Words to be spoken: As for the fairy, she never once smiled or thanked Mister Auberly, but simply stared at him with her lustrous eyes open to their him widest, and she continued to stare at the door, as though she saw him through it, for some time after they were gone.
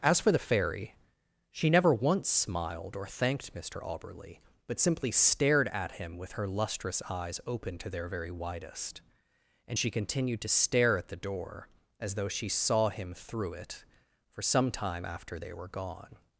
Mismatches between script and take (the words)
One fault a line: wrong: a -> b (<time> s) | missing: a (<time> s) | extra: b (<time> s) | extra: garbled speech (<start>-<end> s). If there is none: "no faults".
wrong: him -> very (8.1 s)